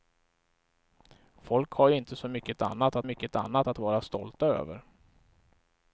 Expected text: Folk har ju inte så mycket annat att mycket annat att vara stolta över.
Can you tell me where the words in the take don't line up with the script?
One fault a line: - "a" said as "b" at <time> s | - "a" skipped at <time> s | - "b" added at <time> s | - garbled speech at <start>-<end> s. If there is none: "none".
none